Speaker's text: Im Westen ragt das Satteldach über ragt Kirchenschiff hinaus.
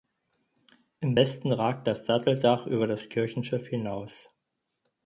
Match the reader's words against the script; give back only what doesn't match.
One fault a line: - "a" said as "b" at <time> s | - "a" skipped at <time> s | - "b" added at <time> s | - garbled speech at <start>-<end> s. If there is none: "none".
- "ragt" said as "das" at 2.8 s